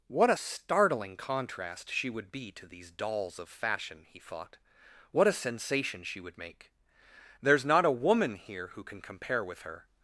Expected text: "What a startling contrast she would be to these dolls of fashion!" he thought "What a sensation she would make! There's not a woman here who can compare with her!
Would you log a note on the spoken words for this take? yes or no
no